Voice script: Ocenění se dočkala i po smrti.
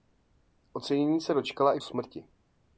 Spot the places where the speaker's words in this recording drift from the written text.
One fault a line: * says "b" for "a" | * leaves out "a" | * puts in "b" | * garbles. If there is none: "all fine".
* leaves out "po"